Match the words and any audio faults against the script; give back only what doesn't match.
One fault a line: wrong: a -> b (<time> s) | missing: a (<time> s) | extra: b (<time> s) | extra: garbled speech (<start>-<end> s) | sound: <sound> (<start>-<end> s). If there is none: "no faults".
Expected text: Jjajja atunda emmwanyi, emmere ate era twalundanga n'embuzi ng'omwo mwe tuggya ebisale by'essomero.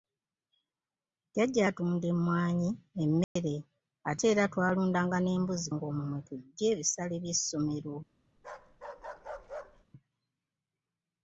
sound: dropout (3.2-3.4 s)
sound: bark (8.4-9.9 s)